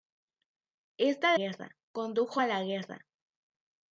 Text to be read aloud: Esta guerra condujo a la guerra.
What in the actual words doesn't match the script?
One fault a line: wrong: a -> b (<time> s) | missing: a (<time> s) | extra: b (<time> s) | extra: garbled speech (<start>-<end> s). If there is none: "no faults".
no faults